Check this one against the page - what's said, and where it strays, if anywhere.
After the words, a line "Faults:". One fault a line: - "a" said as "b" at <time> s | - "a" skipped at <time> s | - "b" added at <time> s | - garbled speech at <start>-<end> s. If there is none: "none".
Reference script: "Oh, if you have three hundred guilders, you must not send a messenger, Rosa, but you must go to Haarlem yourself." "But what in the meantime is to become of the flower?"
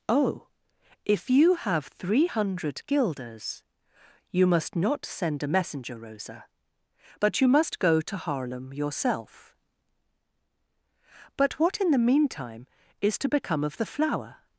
"Oh, if you have three hundred guilders, you must not send a messenger, Rosa, but you must go to Haarlem yourself." "But what in the meantime is to become of the flower?"
Faults:
none